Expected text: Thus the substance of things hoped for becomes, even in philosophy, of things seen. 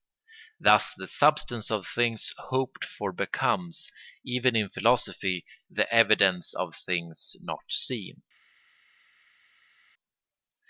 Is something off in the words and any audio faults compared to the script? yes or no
yes